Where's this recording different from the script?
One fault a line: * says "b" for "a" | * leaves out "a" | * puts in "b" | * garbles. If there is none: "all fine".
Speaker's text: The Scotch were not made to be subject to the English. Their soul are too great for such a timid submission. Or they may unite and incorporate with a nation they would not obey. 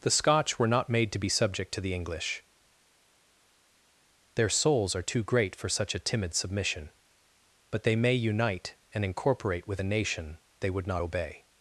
* says "souls" for "soul"
* says "But" for "Or"